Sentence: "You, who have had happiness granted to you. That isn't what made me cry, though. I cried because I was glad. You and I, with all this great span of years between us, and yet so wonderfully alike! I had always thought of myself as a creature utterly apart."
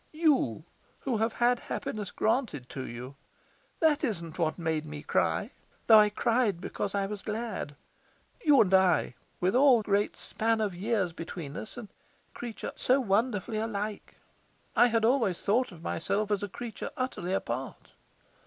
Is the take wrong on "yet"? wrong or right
wrong